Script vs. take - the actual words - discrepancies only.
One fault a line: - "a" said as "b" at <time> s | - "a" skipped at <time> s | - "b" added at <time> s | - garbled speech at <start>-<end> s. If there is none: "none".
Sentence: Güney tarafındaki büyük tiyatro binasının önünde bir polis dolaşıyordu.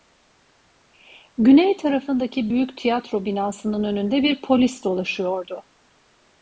none